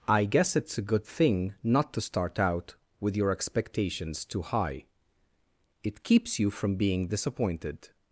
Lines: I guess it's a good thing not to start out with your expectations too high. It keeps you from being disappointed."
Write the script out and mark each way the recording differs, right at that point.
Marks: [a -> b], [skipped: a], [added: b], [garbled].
I guess it's a good thing not to start out with your expectations too high. It keeps you from being disappointed."